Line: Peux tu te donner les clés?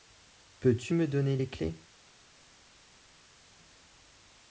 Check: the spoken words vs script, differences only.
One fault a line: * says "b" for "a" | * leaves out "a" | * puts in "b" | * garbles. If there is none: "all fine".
* says "me" for "te"